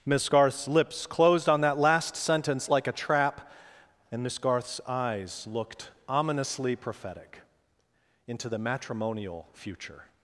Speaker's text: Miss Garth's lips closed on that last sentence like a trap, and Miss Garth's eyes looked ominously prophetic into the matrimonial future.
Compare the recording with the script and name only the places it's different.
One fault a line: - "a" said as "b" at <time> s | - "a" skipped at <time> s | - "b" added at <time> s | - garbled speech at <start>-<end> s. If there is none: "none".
none